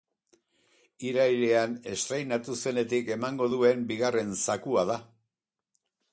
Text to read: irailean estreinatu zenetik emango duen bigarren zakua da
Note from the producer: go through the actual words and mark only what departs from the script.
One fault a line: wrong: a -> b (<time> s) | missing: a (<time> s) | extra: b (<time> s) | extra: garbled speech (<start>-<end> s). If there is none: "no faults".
no faults